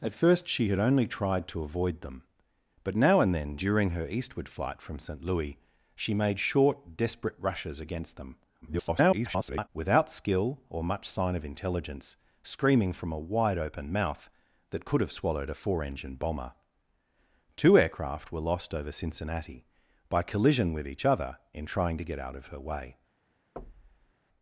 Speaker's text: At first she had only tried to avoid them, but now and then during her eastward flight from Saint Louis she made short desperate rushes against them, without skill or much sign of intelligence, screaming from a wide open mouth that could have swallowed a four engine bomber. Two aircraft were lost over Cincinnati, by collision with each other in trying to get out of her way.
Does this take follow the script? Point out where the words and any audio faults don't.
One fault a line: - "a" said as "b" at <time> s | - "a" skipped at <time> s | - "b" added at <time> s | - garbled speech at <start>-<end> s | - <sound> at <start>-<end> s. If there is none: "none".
- garbled speech at 8.6-9.7 s
- thud at 23.6-24.1 s